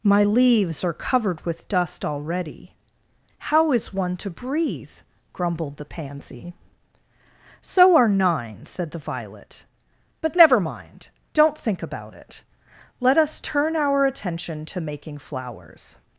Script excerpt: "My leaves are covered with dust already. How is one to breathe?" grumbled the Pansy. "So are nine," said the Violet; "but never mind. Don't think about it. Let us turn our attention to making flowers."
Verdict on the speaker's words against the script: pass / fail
pass